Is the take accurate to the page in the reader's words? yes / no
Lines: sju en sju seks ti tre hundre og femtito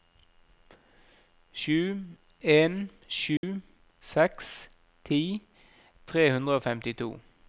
yes